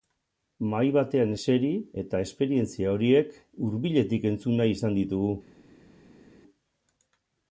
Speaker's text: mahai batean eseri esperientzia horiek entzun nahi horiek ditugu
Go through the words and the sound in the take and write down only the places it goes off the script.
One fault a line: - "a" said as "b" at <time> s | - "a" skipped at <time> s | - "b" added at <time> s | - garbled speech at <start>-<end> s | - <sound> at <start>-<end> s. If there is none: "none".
- "eta" added at 2.0 s
- "hurbiletik" added at 3.7 s
- "horiek" said as "izan" at 4.8 s